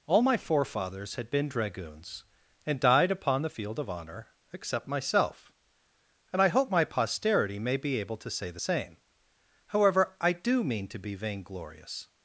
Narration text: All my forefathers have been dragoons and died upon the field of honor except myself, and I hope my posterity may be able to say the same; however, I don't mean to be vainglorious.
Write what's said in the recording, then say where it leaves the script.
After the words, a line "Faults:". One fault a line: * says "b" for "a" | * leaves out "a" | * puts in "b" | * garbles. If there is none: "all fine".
All my forefathers had been dragoons and died upon the field of honor except myself, and I hope my posterity may be able to say the same; however, I do mean to be vainglorious.
Faults:
* says "had" for "have"
* says "do" for "don't"